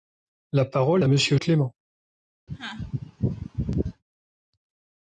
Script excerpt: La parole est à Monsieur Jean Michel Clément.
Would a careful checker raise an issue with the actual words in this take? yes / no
yes